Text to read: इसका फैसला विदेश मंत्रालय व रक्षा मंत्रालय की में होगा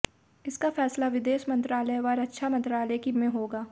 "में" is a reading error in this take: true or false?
false